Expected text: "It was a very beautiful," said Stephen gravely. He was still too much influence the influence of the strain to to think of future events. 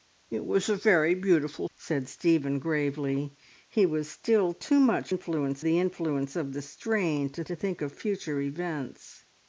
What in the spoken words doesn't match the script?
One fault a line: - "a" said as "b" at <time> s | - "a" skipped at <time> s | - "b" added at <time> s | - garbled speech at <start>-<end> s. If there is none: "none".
none